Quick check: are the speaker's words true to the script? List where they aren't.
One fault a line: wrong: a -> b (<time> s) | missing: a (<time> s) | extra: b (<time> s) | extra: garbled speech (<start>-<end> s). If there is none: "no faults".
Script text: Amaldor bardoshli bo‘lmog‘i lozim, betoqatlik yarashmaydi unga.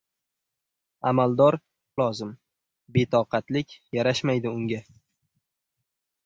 missing: bardoshli bo‘lmog‘i (1.6 s)